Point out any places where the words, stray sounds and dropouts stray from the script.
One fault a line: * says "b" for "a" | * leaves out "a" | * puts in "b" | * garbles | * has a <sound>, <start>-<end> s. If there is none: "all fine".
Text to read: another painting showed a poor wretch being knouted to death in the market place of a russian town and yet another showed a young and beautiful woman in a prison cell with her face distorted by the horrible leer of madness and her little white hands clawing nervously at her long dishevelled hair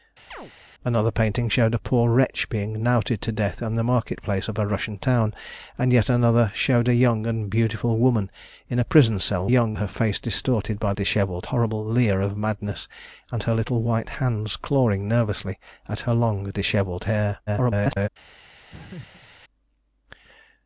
* has a chirp, 0.3-0.5 s
* says "young" for "with"
* says "dishevelled" for "the"
* garbles
* has a laugh, 18.7-19.3 s